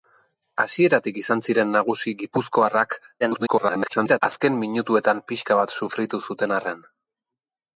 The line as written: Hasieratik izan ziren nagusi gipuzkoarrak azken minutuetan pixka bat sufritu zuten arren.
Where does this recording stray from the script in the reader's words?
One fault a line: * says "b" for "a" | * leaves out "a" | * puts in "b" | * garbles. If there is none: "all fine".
* garbles